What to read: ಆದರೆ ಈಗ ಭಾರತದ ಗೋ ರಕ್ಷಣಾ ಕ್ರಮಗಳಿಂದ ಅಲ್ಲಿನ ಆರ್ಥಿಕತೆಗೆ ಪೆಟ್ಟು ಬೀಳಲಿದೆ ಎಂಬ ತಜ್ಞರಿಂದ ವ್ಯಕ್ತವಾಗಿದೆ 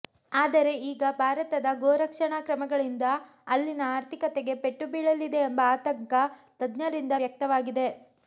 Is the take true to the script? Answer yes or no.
no